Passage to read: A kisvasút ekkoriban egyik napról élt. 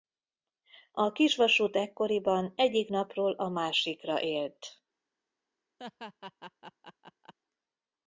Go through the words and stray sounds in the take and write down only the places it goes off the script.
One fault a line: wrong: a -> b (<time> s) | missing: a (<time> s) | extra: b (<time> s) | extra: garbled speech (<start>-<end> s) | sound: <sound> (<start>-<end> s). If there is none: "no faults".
extra: a másikra (3.3 s)
sound: laugh (5.8-7.3 s)